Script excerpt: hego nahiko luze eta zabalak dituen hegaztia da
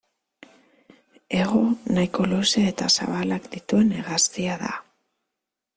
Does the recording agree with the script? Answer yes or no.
yes